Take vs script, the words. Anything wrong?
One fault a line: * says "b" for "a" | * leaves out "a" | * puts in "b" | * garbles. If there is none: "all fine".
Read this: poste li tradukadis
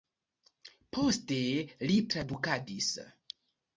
all fine